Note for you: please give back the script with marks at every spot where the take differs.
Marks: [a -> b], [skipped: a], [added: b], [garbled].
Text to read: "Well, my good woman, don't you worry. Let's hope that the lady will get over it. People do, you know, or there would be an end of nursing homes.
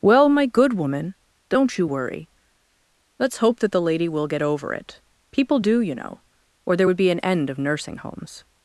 "Well, my good woman, don't you worry. Let's hope that the lady will get over it. People do, you know, or there would be an end of nursing homes.